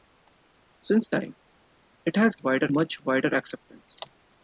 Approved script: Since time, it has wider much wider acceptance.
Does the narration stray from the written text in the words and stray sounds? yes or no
no